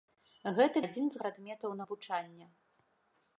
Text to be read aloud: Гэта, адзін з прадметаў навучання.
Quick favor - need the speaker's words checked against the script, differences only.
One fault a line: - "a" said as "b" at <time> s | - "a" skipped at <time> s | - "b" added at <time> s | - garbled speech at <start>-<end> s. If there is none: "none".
none